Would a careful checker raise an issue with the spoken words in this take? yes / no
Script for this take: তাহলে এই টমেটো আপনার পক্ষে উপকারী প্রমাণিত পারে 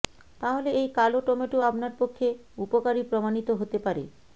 yes